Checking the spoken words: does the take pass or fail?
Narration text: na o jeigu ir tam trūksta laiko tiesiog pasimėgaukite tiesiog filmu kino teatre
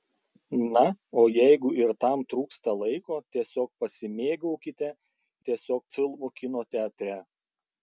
pass